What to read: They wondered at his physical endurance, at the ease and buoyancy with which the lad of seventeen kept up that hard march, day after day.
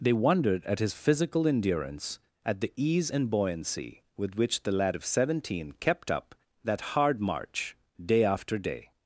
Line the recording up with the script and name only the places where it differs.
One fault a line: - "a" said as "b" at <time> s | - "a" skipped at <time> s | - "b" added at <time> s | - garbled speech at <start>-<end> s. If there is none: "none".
none